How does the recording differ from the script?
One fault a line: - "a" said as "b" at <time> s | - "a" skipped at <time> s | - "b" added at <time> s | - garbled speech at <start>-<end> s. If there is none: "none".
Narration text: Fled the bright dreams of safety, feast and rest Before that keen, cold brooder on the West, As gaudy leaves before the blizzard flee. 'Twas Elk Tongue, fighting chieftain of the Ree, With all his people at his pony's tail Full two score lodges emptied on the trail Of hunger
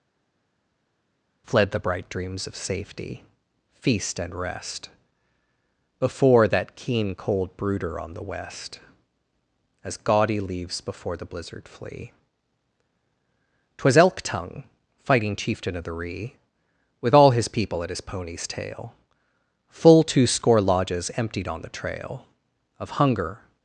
none